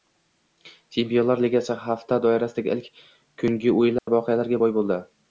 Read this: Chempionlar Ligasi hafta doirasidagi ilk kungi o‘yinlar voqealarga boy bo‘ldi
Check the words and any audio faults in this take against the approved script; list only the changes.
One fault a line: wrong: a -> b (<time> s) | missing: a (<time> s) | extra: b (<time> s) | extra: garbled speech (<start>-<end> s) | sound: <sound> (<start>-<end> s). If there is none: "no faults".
sound: dropout (4.0-4.1 s)